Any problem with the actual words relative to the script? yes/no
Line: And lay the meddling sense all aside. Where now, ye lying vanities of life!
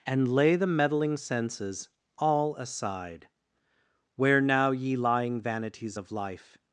yes